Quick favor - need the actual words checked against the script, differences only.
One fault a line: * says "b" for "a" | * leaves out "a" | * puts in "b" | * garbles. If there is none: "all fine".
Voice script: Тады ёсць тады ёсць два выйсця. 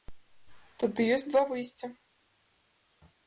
* leaves out "тады ёсць"